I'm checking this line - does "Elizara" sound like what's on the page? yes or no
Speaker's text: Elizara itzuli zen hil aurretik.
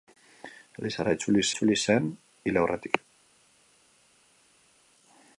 yes